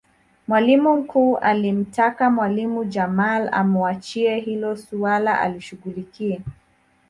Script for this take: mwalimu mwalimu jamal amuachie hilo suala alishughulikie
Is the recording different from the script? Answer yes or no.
yes